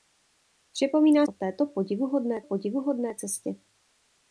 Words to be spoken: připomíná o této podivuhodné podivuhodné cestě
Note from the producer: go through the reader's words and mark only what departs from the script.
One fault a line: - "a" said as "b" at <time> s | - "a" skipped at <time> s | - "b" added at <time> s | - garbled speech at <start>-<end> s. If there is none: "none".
none